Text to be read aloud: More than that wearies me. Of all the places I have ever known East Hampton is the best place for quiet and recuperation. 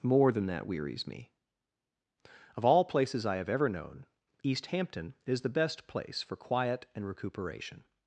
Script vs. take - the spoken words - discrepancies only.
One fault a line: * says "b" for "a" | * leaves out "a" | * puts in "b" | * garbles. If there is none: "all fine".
* leaves out "the"